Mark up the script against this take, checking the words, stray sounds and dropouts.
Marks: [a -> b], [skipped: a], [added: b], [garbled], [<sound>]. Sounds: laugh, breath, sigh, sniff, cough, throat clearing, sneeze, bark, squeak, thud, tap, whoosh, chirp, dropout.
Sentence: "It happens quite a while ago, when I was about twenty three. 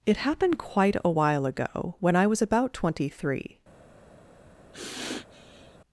"It [happens -> happened] quite a while ago, when I was about twenty three. [sniff]